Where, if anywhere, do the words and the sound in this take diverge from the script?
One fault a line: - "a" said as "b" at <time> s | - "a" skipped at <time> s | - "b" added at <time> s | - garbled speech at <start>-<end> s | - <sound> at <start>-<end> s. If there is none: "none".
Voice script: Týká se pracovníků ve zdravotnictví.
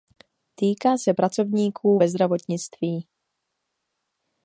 none